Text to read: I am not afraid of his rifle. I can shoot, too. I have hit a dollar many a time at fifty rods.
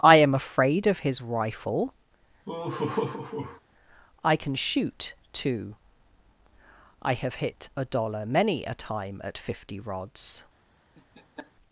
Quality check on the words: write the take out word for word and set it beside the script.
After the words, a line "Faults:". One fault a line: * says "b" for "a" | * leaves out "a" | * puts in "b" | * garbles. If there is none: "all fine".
I am afraid of his rifle. I can shoot, too. I have hit a dollar many a time at fifty rods.
Faults:
* leaves out "not"